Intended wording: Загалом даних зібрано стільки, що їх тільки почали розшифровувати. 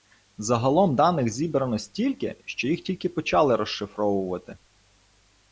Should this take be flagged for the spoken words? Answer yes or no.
no